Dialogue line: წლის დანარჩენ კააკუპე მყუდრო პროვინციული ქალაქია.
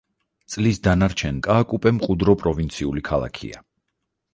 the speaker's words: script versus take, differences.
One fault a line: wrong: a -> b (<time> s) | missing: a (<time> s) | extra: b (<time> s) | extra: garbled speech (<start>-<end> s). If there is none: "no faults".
no faults